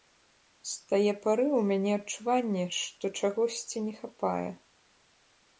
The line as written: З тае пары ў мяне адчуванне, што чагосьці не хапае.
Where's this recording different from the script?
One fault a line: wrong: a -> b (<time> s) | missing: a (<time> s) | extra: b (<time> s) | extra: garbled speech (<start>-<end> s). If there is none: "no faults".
no faults